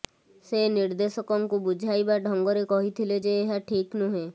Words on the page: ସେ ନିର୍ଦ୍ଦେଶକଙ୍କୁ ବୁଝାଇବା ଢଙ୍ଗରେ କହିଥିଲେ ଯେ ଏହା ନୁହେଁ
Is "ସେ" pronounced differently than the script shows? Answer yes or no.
no